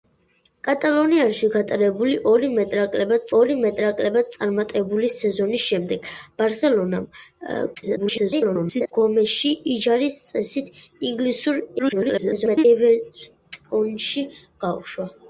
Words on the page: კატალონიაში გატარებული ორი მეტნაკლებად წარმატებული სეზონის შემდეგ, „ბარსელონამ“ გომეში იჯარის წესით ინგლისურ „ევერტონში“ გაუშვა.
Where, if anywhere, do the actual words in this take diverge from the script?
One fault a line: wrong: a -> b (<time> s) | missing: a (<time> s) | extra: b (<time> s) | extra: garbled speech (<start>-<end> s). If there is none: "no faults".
extra: ორი მეტნაკლებად (3.4 s)
extra: garbled speech (7.7-8.9 s)
extra: garbled speech (11.8-12.6 s)